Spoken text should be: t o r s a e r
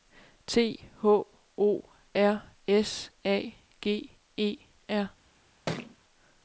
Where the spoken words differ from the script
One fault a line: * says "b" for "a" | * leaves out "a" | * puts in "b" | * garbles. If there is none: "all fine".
* puts in "h"
* puts in "g"